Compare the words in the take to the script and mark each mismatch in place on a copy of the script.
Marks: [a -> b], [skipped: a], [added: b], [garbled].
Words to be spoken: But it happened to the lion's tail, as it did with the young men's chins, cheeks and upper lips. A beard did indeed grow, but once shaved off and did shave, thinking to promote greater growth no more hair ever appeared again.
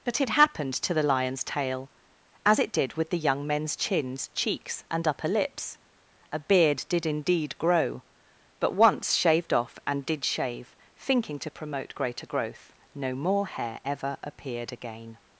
But it happened to the lion's tail, as it did with the young men's chins, cheeks and upper lips. A beard did indeed grow, but once shaved off and did shave, thinking to promote greater growth no more hair ever appeared again.